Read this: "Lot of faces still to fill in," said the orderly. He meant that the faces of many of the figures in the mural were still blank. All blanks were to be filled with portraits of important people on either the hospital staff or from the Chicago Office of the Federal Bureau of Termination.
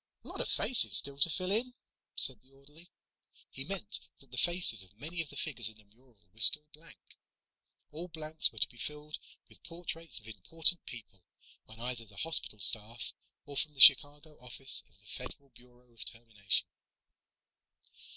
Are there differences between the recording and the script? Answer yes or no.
no